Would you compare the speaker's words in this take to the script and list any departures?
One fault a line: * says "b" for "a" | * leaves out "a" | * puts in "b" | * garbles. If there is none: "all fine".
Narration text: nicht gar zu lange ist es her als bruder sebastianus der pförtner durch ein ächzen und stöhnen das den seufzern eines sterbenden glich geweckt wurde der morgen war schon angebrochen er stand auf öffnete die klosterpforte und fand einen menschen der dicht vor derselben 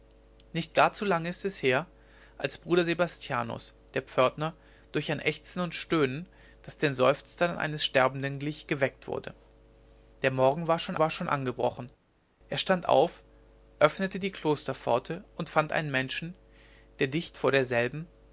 * puts in "war schon"